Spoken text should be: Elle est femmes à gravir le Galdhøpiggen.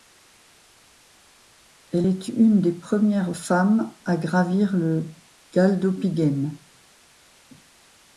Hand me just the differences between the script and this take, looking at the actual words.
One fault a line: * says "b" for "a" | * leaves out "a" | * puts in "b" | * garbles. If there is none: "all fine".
* puts in "une des premières"